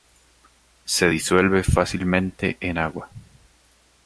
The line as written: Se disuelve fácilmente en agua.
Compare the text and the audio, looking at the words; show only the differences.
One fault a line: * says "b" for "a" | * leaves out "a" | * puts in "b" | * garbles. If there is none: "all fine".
all fine